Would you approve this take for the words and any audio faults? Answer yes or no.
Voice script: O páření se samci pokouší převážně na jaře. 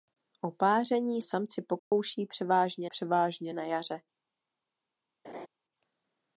no